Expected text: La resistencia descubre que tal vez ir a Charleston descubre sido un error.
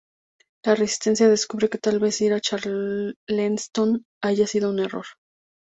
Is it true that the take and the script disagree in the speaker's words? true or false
true